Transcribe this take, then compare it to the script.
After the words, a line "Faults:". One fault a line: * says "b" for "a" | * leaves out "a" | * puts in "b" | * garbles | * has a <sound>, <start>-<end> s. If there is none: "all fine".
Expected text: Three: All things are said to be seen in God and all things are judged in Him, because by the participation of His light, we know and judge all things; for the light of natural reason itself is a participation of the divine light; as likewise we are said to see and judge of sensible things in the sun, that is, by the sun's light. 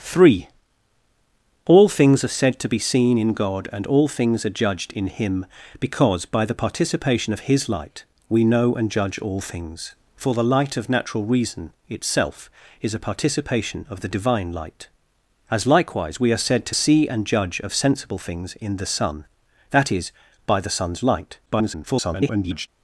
Three: All things are said to be seen in God and all things are judged in Him, because by the participation of His light, we know and judge all things; for the light of natural reason itself is a participation of the divine light; as likewise we are said to see and judge of sensible things in the sun, that is, by the sun's light. [garbled]
Faults:
* garbles